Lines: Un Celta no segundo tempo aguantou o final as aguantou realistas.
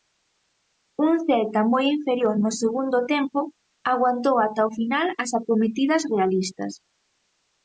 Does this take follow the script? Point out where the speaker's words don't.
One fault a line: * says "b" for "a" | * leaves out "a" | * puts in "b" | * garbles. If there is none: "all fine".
* puts in "moi inferior"
* puts in "ata"
* says "acometidas" for "aguantou"